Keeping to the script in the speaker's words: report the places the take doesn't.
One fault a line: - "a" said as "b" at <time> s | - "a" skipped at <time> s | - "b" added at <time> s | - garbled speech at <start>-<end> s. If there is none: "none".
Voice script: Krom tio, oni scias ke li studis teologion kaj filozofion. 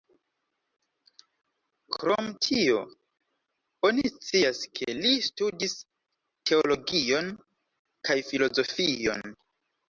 none